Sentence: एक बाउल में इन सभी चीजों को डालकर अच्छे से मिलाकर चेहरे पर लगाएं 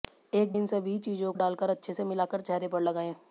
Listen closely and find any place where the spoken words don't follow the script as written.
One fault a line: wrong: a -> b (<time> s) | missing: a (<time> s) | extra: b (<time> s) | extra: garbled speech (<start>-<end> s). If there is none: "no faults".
missing: बाउल में (0.5 s)
missing: को (1.3 s)